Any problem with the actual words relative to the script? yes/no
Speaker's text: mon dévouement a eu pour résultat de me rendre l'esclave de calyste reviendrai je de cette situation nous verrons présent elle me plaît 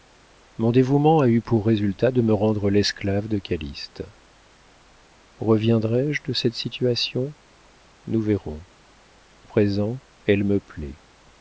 no